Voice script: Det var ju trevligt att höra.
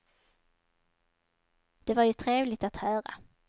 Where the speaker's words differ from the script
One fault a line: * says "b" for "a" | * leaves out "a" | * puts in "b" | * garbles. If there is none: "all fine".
all fine